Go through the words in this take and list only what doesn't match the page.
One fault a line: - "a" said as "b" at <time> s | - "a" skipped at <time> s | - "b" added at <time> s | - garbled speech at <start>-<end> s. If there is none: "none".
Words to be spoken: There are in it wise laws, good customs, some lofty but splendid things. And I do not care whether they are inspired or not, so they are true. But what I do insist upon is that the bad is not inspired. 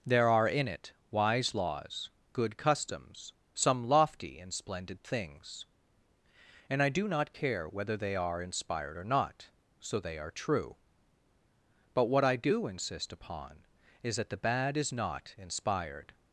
- "but" said as "and" at 4.4 s